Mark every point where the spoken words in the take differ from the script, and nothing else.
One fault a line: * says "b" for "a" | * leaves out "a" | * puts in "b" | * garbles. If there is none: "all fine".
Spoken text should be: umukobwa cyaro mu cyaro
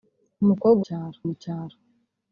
all fine